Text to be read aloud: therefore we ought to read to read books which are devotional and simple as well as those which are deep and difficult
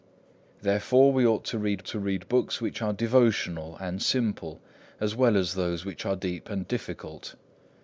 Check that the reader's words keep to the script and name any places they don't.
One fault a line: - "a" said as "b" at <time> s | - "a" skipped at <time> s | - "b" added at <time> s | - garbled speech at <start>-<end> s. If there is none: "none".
none